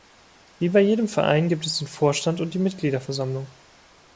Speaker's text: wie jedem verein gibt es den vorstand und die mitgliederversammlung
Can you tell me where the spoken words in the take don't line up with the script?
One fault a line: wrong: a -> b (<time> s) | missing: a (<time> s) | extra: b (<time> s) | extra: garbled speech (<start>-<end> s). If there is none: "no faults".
extra: bei (0.7 s)